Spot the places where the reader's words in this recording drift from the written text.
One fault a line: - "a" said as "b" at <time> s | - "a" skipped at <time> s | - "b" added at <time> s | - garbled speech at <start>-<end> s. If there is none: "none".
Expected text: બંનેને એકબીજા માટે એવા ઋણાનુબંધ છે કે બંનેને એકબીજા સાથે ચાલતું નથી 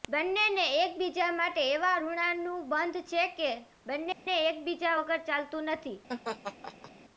- "સાથે" said as "વગર" at 5.0 s